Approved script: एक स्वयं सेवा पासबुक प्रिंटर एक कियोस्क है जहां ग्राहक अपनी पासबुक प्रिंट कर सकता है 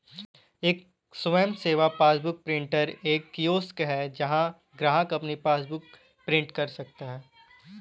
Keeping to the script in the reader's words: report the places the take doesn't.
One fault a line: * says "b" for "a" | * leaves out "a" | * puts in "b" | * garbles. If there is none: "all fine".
all fine